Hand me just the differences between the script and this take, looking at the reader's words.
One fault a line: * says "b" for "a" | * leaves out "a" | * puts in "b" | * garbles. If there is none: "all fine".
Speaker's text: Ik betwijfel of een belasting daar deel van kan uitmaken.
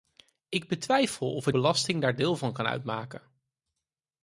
all fine